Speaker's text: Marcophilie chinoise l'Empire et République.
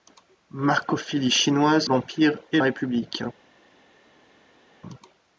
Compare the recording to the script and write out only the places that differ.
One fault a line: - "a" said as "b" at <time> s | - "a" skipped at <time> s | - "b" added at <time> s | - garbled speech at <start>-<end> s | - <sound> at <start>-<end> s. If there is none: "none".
none